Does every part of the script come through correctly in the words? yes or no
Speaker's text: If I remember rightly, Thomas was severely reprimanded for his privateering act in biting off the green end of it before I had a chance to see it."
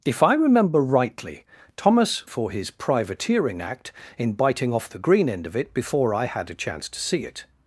no